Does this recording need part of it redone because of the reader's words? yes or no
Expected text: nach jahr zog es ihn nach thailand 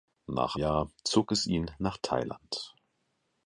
no